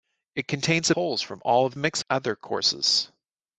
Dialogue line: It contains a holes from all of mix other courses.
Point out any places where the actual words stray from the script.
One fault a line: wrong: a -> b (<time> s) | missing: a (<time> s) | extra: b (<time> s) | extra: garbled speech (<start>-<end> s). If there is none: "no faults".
no faults